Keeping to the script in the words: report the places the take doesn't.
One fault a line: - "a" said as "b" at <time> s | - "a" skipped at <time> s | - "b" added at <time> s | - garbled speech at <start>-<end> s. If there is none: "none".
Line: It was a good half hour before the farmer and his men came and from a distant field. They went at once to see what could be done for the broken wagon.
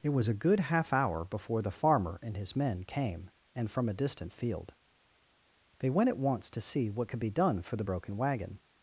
none